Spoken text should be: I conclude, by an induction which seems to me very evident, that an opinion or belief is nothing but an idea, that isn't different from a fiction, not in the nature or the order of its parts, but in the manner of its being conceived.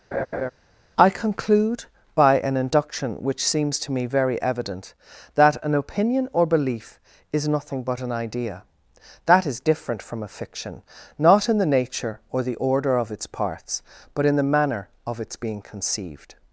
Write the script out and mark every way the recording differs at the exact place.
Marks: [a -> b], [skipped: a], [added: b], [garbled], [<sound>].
[laugh] I conclude, by an induction which seems to me very evident, that an opinion or belief is nothing but an idea, that [isn't -> is] different from a fiction, not in the nature or the order of its parts, but in the manner of its being conceived.